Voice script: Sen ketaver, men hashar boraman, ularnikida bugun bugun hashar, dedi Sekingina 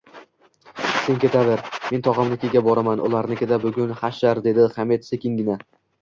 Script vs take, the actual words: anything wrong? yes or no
yes